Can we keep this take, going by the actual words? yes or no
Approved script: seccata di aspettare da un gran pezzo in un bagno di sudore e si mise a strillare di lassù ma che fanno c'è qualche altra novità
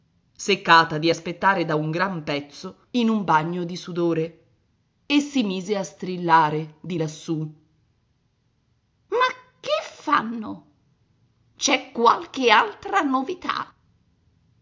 yes